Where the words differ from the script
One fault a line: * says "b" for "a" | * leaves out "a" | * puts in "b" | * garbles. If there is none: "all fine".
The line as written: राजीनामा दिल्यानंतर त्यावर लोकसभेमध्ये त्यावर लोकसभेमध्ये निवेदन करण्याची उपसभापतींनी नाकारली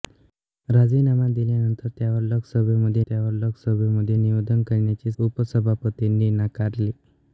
all fine